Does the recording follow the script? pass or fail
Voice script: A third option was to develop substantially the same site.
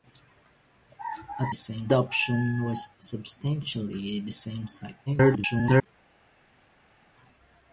fail